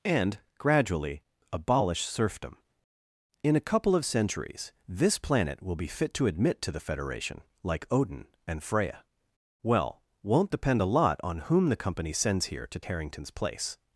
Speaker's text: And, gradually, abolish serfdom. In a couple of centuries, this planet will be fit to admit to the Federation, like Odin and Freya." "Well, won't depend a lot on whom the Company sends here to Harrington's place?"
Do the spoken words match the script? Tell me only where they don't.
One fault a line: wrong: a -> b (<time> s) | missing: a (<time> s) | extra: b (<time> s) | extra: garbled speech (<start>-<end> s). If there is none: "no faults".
no faults